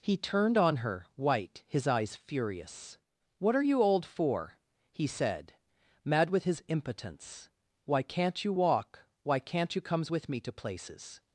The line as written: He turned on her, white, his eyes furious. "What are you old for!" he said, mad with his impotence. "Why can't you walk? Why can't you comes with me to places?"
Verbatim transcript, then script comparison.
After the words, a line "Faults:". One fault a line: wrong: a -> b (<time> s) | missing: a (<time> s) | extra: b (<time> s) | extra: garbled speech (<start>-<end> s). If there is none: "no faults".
He turned on her, white, his eyes furious. "What are you old for!" he said, mad with his impotence. "Why can't you walk? Why can't you comes with me to places?"
Faults:
no faults